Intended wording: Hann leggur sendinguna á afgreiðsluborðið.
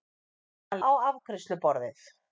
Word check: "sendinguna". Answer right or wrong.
wrong